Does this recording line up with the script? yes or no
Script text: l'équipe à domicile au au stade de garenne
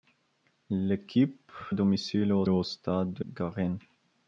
yes